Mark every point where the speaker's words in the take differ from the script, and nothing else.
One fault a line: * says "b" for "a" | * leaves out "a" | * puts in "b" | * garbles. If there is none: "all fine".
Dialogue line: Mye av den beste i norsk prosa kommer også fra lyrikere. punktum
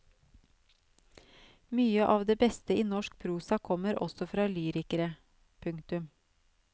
* says "det" for "den"